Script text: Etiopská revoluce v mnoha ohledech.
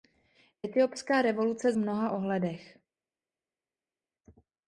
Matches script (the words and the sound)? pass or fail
pass